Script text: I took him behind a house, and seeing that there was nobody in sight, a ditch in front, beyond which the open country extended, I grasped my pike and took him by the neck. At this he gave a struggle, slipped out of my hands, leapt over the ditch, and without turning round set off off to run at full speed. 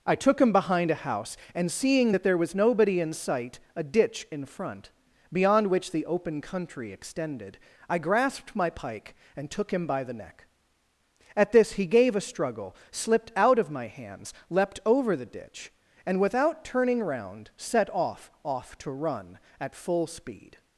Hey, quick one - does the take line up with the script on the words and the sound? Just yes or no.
yes